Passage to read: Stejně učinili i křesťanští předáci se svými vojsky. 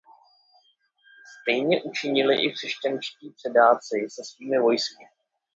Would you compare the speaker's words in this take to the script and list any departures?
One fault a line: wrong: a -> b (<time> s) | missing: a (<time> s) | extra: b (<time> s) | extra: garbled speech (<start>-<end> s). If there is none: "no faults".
no faults